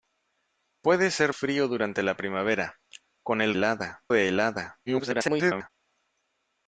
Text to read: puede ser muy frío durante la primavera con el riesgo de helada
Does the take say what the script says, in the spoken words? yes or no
no